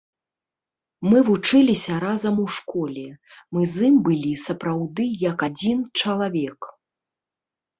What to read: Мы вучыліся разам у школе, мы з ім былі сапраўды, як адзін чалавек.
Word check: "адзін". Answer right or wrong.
right